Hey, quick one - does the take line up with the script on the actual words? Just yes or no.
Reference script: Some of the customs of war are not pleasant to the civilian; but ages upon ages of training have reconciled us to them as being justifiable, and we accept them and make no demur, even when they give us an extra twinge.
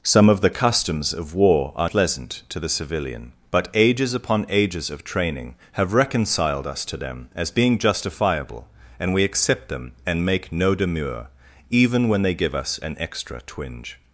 no